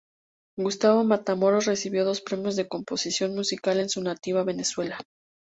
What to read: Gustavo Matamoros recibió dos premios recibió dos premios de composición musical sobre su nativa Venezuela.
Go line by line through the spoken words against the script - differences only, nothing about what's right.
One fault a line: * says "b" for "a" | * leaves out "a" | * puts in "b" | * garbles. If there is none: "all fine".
* leaves out "recibió dos premios"
* says "en" for "sobre"